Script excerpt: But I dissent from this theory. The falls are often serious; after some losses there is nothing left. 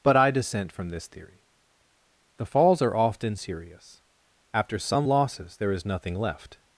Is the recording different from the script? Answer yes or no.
no